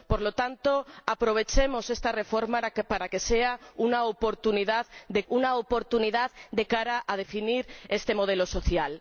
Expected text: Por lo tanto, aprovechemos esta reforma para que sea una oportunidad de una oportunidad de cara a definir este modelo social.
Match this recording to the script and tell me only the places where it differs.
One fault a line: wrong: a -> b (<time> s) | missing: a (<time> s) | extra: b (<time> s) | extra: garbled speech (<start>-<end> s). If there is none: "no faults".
no faults